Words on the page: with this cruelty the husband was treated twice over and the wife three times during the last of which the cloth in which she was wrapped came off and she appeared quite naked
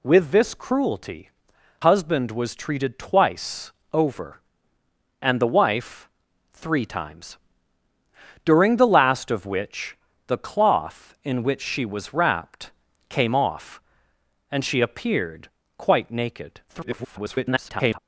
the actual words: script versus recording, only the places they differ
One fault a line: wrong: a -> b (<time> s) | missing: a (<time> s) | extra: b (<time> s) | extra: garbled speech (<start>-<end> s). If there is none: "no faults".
missing: the (1.3 s)
extra: garbled speech (16.7-18.0 s)